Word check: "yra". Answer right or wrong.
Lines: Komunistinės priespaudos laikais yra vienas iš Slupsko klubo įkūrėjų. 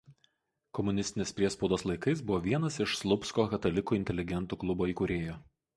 wrong